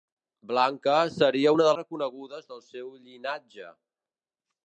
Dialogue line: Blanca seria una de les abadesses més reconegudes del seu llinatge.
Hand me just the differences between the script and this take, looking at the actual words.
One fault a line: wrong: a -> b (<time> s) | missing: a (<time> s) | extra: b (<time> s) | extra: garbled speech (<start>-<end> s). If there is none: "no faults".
missing: les abadesses més (1.7 s)